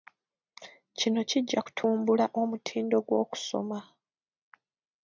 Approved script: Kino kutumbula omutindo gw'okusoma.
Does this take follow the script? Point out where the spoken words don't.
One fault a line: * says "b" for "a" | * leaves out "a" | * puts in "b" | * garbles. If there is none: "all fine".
* puts in "kijja"